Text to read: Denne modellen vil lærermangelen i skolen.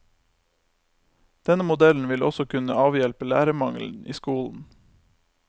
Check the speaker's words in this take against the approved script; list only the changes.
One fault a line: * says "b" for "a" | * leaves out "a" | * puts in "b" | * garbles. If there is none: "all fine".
* puts in "også kunne avhjelpe"